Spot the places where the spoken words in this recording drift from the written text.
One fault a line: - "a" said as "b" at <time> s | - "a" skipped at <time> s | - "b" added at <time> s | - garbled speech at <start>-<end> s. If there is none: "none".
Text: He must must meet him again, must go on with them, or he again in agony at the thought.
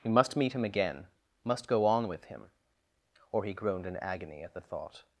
- "must" skipped at 0.3 s
- "them" said as "him" at 2.2 s
- "again" said as "groaned" at 3.5 s